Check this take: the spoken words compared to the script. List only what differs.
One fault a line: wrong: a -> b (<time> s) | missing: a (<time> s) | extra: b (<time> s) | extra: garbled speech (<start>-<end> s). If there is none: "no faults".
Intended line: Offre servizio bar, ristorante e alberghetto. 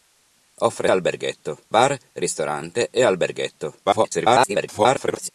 wrong: servizio -> alberghetto (0.9 s)
extra: garbled speech (3.8-5.3 s)